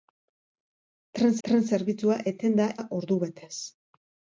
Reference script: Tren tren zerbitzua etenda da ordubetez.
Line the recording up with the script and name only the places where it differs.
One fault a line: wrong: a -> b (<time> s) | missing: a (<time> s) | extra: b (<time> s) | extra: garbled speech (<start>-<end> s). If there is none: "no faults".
no faults